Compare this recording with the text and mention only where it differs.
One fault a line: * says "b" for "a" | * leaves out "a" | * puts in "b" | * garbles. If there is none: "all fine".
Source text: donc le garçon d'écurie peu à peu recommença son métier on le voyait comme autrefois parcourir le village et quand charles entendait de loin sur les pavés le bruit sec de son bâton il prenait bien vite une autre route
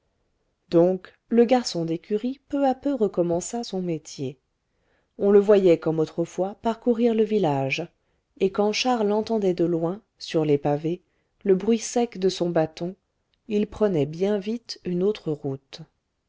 all fine